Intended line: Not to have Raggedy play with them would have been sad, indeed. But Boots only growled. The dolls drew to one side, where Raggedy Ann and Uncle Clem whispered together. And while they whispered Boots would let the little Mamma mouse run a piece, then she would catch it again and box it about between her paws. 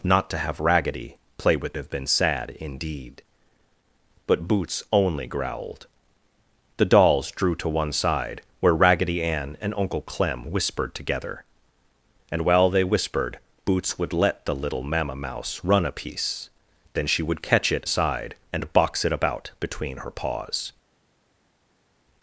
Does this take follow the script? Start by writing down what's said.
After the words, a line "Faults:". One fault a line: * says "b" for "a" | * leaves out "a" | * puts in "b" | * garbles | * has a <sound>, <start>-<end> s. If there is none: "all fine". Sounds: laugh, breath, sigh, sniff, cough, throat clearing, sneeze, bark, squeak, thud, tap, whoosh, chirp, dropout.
Not to have Raggedy play with have been sad, indeed. But Boots only growled. The dolls drew to one side, where Raggedy Ann and Uncle Clem whispered together. And while they whispered Boots would let the little Mamma mouse run a piece, then she would catch it side and box it about between her paws.
Faults:
* leaves out "them would"
* says "side" for "again"